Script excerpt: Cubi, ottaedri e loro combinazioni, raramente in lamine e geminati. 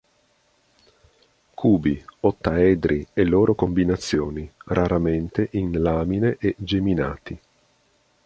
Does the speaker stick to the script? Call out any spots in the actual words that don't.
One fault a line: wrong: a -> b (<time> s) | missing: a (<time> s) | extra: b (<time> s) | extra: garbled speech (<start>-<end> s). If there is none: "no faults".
no faults